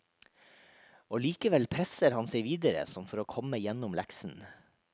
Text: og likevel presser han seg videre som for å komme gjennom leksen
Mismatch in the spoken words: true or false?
false